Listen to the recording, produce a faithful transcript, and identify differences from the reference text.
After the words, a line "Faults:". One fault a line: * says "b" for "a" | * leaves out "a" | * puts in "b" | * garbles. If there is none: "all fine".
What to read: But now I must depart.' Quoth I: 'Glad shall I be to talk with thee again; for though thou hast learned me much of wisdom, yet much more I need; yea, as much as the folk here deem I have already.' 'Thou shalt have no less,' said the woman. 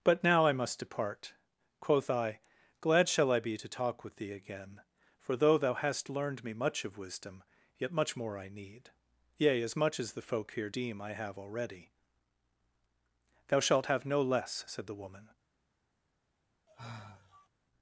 But now I must depart.' Quoth I: 'Glad shall I be to talk with thee again; for though thou hast learned me much of wisdom, yet much more I need; yea, as much as the folk here deem I have already.' 'Thou shalt have no less,' said the woman.
Faults:
all fine